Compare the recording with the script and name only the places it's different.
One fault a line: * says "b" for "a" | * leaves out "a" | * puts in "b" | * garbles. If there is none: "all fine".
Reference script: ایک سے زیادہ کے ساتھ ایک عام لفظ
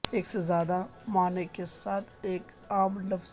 * puts in "معنی"